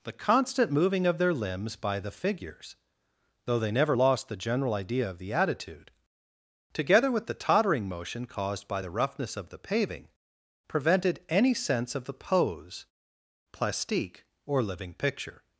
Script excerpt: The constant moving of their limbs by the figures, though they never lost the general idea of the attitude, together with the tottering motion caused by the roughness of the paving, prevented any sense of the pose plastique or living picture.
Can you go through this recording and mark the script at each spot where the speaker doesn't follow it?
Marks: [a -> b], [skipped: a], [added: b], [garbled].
The constant moving of their limbs by the figures, though they never lost the general idea of the attitude, together with the tottering motion caused by the roughness of the paving, prevented any sense of the pose plastique or living picture.